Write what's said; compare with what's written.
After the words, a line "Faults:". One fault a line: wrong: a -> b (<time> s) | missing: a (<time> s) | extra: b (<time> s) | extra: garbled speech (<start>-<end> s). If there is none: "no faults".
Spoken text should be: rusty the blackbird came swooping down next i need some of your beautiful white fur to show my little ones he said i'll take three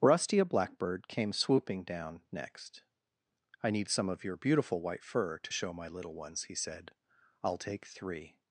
rusty a blackbird came swooping down next i need some of your beautiful white fur to show my little ones he said i'll take three
Faults:
wrong: the -> a (0.4 s)